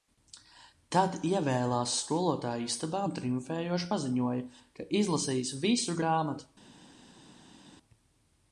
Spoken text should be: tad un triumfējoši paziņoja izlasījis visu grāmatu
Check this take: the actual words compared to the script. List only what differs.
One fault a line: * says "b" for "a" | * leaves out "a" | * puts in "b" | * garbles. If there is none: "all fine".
* puts in "ievēlās skolotāju istabā"
* puts in "ka"